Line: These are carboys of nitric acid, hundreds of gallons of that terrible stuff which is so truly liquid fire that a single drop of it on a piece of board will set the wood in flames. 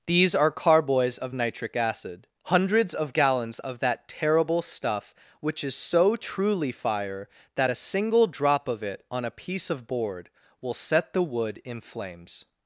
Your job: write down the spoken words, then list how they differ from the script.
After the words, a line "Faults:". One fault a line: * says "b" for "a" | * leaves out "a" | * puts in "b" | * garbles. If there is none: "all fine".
These are carboys of nitric acid, hundreds of gallons of that terrible stuff which is so truly fire that a single drop of it on a piece of board will set the wood in flames.
Faults:
* leaves out "liquid"